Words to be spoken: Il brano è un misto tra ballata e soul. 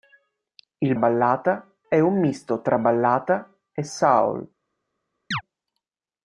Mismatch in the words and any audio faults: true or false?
true